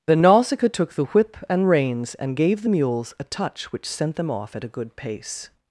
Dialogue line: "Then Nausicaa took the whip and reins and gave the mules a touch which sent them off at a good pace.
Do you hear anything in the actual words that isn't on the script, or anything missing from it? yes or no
no